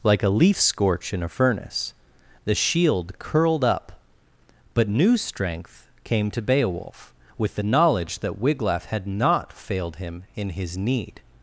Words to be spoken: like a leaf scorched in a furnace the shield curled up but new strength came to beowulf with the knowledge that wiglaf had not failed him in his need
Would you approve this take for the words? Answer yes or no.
no